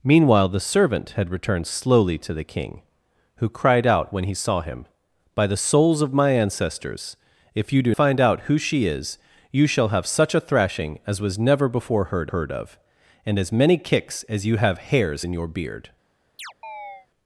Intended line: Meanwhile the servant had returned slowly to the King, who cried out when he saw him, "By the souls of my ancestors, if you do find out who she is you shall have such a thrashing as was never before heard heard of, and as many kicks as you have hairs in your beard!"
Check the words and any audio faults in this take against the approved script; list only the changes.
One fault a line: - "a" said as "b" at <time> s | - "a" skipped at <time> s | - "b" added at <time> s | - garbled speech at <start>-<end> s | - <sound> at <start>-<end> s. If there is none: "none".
- chirp at 16.4-17.1 s